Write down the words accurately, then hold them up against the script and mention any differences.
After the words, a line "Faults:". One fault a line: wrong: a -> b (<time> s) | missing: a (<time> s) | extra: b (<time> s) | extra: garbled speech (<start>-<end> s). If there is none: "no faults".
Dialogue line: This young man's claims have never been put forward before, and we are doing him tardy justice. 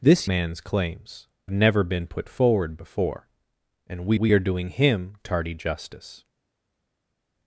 This man's claims never been put forward before, and we we are doing him tardy justice.
Faults:
missing: young (0.3 s)
missing: have (1.3 s)
extra: we (4.2 s)